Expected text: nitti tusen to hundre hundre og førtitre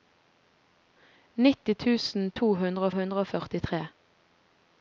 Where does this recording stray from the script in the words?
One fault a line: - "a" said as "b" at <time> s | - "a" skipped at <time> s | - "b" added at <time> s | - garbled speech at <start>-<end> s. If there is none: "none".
none